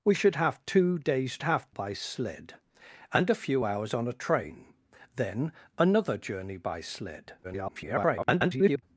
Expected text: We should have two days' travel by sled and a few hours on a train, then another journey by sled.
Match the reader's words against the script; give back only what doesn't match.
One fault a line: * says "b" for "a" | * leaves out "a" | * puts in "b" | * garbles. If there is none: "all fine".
* says "have" for "travel"
* garbles